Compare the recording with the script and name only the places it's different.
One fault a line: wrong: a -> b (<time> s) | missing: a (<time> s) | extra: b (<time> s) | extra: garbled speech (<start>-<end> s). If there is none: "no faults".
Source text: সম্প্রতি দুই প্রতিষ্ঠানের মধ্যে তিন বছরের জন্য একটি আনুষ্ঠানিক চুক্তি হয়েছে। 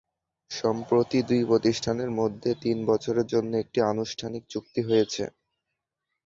no faults